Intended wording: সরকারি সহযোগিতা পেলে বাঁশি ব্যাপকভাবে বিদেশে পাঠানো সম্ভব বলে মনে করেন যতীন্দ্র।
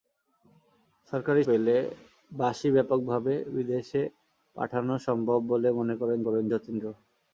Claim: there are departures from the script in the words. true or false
true